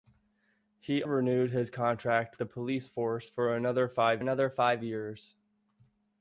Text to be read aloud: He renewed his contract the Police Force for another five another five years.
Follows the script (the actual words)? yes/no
yes